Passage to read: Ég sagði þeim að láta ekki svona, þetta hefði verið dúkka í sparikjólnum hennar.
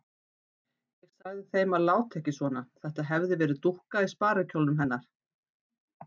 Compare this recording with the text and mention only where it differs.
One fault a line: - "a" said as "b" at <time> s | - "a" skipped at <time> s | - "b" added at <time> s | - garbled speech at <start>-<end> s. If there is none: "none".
none